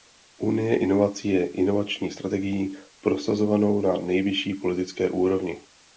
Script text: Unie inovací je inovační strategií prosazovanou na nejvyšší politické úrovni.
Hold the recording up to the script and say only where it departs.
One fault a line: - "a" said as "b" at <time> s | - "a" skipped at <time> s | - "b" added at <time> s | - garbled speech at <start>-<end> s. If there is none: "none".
none